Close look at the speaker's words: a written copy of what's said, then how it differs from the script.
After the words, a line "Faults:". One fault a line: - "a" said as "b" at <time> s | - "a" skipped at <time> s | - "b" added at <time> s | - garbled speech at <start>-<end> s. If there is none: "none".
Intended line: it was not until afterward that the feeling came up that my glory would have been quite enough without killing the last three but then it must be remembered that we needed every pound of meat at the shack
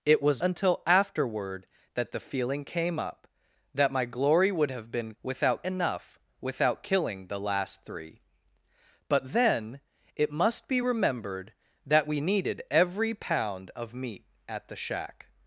it was until afterward that the feeling came up that my glory would have been without enough without killing the last three but then it must be remembered that we needed every pound of meat at the shack
Faults:
- "not" skipped at 0.4 s
- "quite" said as "without" at 5.2 s